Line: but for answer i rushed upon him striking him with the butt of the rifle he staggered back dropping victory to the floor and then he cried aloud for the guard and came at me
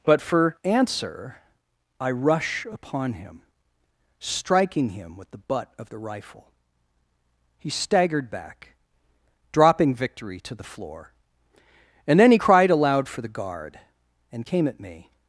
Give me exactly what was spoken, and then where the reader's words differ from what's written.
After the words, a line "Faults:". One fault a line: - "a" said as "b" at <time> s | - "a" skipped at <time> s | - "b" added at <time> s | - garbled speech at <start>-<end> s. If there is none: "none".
but for answer i rush upon him striking him with the butt of the rifle he staggered back dropping victory to the floor and then he cried aloud for the guard and came at me
Faults:
- "rushed" said as "rush" at 2.1 s